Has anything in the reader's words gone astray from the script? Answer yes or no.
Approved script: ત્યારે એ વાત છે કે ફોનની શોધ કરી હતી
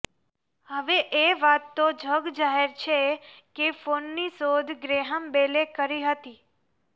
yes